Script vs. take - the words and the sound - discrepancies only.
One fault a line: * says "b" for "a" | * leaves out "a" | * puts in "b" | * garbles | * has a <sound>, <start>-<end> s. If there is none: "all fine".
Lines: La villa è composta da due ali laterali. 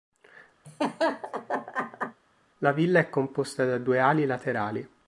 * has a laugh, 0.6-2.2 s